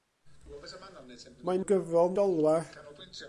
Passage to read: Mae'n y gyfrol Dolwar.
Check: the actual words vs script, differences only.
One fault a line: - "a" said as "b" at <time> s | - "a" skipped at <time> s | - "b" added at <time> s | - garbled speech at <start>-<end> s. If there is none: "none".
none